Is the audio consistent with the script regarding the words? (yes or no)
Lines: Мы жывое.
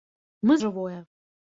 yes